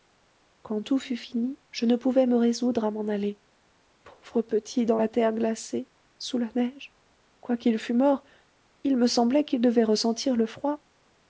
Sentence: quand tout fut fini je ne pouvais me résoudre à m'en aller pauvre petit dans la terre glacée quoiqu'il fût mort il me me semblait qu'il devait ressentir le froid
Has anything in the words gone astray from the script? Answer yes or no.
yes